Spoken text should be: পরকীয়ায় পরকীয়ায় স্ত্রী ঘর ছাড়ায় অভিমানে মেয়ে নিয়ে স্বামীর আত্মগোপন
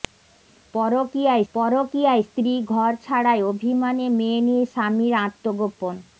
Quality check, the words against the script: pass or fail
pass